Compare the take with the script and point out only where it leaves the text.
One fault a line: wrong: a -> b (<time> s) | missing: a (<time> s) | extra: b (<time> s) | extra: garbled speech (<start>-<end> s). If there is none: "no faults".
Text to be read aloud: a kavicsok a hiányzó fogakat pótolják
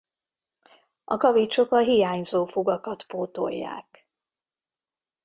no faults